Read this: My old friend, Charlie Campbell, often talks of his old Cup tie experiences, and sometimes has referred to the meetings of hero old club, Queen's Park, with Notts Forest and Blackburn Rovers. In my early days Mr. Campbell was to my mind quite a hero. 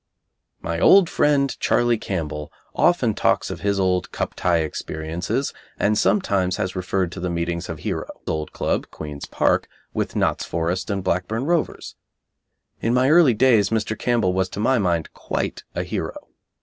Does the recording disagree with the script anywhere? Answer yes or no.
no